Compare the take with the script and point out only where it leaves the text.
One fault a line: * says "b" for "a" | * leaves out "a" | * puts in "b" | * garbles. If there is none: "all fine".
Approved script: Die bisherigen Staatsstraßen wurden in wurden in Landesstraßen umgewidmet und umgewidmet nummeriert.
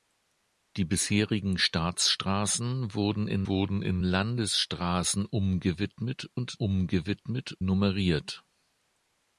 all fine